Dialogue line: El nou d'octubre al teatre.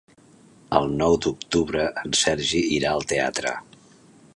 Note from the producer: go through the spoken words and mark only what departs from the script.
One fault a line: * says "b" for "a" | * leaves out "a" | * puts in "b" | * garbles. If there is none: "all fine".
* puts in "en Sergi irà"